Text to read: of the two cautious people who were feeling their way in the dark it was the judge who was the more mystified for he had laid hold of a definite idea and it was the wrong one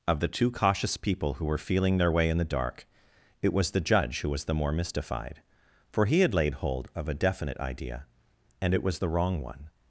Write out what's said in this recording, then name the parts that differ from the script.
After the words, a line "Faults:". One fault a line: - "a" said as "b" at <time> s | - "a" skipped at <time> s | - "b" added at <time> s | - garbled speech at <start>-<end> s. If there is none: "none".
of the two cautious people who were feeling their way in the dark it was the judge who was the more mystified for he had laid hold of a definite idea and it was the wrong one
Faults:
none